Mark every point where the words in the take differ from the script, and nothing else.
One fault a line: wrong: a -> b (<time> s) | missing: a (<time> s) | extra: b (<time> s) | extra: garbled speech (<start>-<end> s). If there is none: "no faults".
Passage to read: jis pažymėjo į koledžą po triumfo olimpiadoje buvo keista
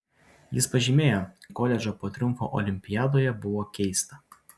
no faults